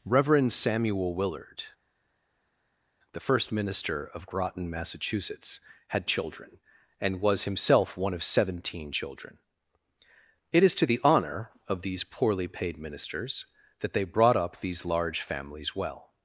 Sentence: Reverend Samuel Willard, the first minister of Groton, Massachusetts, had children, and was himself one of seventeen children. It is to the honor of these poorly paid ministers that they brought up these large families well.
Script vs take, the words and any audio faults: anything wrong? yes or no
no